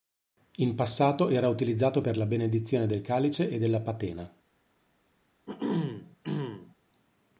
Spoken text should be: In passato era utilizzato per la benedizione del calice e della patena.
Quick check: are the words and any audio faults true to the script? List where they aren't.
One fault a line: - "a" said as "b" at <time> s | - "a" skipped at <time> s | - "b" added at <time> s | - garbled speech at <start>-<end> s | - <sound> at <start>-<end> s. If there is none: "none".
- throat clearing at 5.5-6.7 s